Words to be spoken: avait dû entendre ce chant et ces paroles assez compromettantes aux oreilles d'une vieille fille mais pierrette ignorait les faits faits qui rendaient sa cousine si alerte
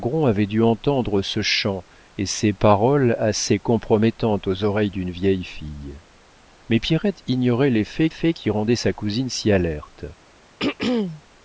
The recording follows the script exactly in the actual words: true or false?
true